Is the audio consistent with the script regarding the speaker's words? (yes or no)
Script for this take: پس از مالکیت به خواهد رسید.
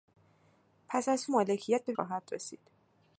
yes